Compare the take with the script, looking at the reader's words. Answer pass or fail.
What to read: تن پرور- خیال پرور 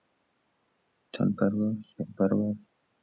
pass